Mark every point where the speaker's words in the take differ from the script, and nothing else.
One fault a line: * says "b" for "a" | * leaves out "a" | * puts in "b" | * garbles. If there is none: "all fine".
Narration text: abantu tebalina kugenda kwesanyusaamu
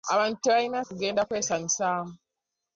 all fine